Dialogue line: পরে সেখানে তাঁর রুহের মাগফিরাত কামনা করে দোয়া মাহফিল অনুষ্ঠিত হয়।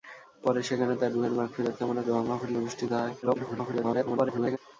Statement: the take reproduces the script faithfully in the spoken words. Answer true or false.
false